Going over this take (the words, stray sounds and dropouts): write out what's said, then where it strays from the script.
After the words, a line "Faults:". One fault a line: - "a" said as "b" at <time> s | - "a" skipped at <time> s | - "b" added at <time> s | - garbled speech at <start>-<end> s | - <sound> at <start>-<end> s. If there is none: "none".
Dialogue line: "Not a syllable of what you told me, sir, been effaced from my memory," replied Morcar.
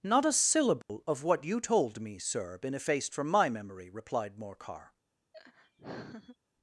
"Not a syllable of what you told me, sir, been effaced from my memory," replied Morcar.
Faults:
- dropout at 0.8-0.9 s
- laugh at 5.3-6.4 s